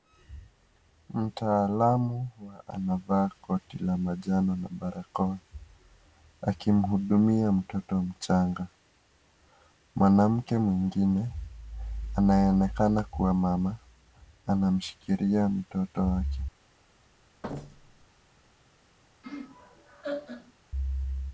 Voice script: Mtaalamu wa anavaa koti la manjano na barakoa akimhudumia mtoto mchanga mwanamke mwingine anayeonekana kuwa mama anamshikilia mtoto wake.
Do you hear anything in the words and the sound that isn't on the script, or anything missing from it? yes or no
yes